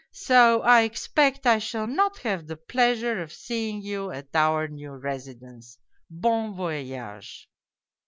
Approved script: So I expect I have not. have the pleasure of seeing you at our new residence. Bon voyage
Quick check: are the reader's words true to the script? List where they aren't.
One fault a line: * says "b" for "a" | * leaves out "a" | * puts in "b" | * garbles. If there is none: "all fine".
* says "shall" for "have"